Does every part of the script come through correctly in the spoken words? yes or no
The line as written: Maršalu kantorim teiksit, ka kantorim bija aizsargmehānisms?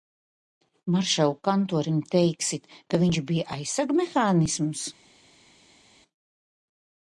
no